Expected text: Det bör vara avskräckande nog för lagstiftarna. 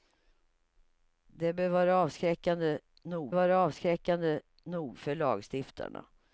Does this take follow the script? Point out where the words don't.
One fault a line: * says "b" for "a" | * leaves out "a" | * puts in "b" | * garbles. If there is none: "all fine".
* puts in "vara avskräckande nog"